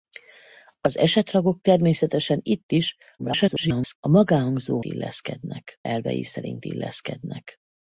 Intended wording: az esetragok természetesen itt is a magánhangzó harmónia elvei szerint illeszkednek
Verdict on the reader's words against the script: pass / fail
fail